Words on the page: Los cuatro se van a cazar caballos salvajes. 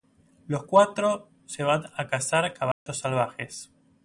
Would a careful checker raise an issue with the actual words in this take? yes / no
no